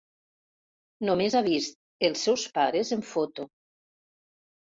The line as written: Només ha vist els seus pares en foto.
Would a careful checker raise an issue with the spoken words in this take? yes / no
no